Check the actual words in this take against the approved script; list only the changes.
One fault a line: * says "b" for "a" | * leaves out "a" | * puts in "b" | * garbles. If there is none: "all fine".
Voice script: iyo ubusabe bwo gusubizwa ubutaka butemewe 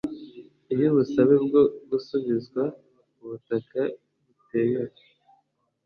all fine